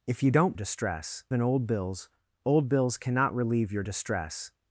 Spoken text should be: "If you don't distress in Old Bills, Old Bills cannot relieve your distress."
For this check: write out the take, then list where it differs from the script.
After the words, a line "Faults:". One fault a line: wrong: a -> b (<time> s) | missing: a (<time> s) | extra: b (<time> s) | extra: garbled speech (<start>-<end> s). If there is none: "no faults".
"If you don't distress in Old Bills, Old Bills cannot relieve your distress."
Faults:
no faults